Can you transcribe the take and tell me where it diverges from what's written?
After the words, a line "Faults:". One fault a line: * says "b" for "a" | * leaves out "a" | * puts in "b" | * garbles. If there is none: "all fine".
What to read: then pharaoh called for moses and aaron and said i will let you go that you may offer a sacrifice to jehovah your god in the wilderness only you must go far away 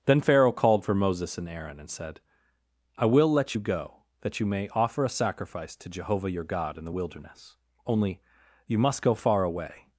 then pharaoh called for moses and aaron and said i will let you go that you may offer a sacrifice to jehovah your god in the wilderness only you must go far away
Faults:
all fine